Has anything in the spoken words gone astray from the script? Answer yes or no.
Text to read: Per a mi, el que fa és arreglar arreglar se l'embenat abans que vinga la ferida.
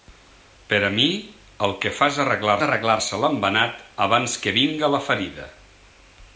no